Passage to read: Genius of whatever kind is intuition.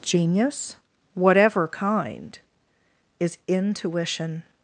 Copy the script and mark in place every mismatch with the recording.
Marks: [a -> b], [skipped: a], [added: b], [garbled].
Genius [skipped: of] whatever kind is intuition.